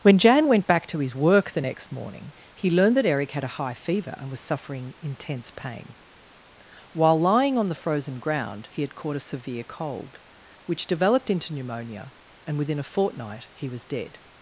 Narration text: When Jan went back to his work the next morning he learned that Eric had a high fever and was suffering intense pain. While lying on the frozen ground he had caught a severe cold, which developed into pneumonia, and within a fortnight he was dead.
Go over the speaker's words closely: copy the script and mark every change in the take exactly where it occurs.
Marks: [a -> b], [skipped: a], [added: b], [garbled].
When Jan went back to his work the next morning he learned that Eric had a high fever and was suffering intense pain. While lying on the frozen ground he had caught a severe cold, which developed into pneumonia, and within a fortnight he was dead.